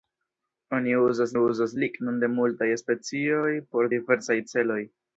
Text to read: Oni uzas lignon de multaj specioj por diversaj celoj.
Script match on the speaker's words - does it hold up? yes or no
no